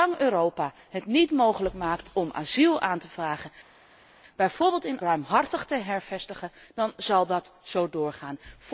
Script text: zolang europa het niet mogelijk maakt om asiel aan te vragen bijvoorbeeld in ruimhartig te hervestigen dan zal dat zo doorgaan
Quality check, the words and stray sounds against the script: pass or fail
pass